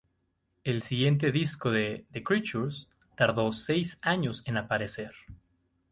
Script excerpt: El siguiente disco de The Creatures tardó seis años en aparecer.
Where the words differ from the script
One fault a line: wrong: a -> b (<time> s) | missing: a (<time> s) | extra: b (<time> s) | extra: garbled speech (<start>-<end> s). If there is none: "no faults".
no faults